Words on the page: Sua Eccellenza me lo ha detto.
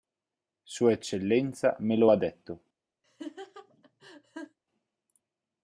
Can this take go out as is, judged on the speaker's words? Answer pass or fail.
pass